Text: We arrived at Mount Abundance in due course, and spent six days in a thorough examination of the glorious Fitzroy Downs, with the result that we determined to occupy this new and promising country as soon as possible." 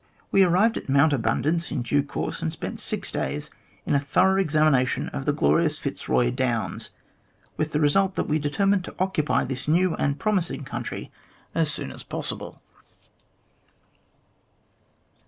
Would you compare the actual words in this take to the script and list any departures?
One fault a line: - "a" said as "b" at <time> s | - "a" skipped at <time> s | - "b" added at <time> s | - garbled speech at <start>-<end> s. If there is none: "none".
none